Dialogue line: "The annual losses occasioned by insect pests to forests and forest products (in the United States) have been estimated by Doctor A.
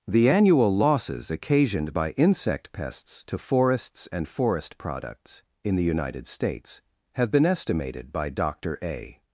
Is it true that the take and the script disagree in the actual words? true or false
false